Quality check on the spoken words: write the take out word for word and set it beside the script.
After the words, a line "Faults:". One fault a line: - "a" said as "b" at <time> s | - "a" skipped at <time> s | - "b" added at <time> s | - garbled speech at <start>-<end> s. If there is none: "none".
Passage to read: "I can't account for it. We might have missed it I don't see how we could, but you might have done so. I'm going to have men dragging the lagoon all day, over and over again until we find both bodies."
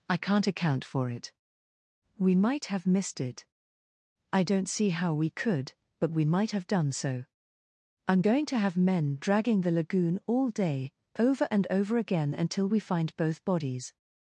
"I can't account for it. We might have missed it I don't see how we could, but we might have done so. I'm going to have men dragging the lagoon all day, over and over again until we find both bodies."
Faults:
- "you" said as "we" at 6.1 s